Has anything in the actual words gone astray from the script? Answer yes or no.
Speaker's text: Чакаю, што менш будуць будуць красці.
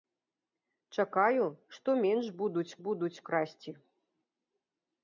no